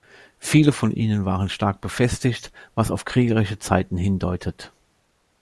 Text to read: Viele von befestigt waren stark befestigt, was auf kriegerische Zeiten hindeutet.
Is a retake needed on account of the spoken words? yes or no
yes